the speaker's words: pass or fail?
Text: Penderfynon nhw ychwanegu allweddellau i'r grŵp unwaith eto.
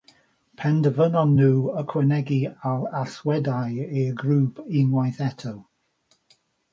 pass